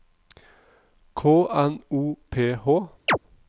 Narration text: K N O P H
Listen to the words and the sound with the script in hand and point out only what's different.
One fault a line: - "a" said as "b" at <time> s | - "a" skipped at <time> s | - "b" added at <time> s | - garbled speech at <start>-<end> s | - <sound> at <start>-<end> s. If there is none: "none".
- chirp at 3.1-3.2 s